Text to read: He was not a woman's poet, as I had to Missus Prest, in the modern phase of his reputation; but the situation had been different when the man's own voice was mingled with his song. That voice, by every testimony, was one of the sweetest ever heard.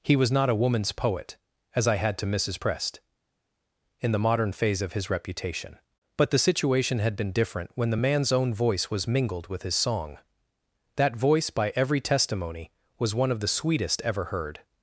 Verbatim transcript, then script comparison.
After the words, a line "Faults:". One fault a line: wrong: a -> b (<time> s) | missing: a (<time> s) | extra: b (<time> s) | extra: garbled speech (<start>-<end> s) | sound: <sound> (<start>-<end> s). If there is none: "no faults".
He was not a woman's poet, as I had to Missus Prest, in the modern phase of his reputation; but the situation had been different when the man's own voice was mingled with his song. That voice, by every testimony, was one of the sweetest ever heard.
Faults:
no faults